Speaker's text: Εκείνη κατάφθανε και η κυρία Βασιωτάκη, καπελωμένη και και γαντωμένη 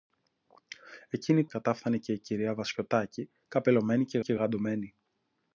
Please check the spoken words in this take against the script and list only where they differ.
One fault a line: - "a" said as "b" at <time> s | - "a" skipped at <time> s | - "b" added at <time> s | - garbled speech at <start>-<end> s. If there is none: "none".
none